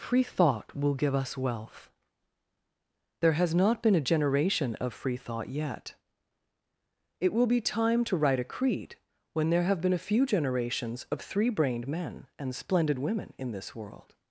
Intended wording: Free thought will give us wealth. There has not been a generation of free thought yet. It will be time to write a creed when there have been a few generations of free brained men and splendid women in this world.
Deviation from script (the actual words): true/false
true